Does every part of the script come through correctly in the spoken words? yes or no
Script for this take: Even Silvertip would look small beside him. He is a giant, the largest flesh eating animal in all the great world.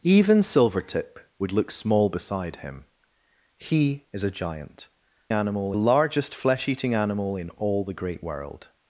no